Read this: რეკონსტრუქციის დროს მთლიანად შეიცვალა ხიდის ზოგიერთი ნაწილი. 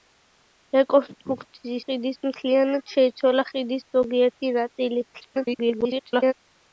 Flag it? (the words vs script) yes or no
yes